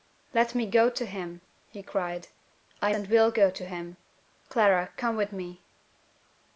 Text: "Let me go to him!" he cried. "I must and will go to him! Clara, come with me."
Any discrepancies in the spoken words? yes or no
yes